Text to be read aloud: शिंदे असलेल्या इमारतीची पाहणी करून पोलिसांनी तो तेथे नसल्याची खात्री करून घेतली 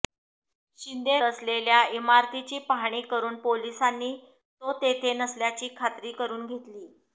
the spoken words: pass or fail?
pass